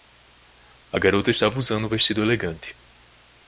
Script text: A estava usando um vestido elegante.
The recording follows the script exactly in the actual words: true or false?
false